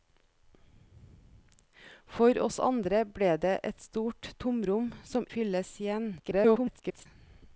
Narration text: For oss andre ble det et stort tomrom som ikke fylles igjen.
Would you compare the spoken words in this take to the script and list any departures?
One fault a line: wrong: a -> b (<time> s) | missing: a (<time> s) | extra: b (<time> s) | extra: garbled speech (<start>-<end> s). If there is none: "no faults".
missing: ikke (5.3 s)
extra: garbled speech (6.2-7.1 s)